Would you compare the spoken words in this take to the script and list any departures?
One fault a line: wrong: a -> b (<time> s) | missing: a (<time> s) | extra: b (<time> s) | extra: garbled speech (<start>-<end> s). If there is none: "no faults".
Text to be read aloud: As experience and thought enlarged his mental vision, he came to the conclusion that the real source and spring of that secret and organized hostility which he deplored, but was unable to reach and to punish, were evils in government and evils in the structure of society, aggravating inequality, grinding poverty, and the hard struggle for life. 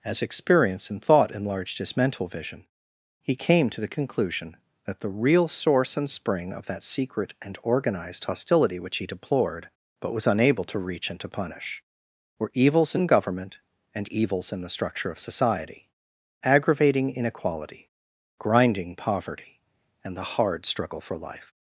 no faults